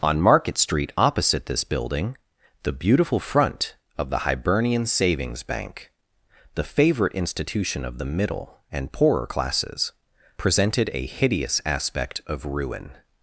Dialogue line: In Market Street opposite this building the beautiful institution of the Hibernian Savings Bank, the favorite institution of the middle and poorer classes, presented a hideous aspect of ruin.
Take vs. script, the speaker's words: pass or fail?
fail